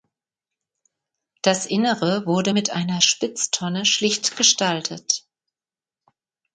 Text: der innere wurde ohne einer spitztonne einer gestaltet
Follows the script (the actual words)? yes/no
no